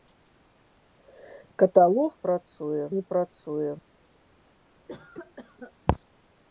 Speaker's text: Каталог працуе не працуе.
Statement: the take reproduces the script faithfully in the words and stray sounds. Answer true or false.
false